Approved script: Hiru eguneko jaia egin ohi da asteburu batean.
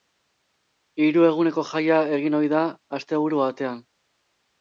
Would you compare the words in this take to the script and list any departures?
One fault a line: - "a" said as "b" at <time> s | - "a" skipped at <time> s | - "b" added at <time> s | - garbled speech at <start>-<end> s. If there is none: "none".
none